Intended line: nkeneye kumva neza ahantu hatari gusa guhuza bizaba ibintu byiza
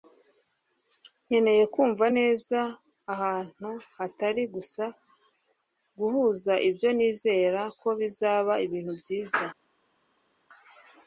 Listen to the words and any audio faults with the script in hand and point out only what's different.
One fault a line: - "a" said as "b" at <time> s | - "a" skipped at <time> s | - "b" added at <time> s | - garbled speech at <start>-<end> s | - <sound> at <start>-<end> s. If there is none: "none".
- "ibyo nizera ko" added at 6.7 s